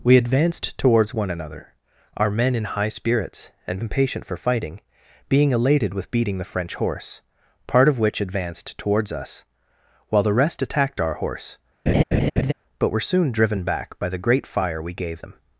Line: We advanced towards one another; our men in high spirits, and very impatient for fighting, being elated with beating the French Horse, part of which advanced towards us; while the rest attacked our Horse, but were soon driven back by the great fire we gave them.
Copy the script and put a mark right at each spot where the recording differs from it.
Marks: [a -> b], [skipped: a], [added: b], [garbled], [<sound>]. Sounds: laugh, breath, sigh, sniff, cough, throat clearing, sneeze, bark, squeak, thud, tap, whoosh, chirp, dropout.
We advanced towards one another; our men in high spirits, and [skipped: very] impatient for fighting, being elated with beating the French Horse, part of which advanced towards us; while the rest attacked our Horse, [laugh] but were soon driven back by the great fire we gave them.